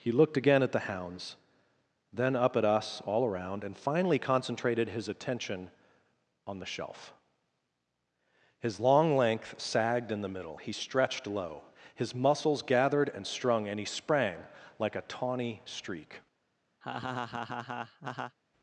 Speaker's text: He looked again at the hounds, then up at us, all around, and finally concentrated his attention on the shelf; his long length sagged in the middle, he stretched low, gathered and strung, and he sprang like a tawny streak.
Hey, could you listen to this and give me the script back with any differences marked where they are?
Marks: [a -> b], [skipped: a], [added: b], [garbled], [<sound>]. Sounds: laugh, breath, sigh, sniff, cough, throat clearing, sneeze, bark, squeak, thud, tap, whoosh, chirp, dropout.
He looked again at the hounds, then up at us, all around, and finally concentrated his attention on the shelf; his long length sagged in the middle, he stretched low, [added: his muscles] gathered and strung, and he sprang like a tawny streak. [laugh]